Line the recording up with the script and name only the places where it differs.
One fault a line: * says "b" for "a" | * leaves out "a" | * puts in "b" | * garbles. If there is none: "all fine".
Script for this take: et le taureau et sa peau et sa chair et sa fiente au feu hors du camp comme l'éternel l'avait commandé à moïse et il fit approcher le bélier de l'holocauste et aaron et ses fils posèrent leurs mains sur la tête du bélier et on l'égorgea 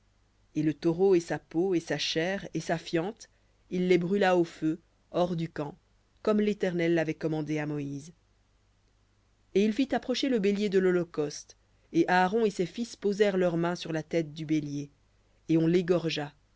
* puts in "il les brûla"